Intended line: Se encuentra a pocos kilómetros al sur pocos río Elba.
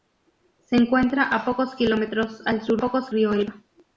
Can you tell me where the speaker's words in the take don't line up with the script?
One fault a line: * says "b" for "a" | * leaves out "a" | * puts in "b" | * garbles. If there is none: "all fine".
all fine